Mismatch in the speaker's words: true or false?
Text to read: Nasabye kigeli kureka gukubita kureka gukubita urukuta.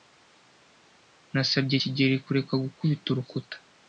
true